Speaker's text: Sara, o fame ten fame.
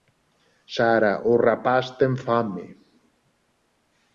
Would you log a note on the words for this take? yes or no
yes